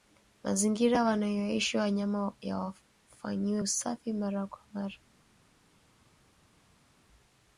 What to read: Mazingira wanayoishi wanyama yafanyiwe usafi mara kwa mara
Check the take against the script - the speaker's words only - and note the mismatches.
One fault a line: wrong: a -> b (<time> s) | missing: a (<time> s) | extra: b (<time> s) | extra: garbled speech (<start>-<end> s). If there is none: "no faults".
no faults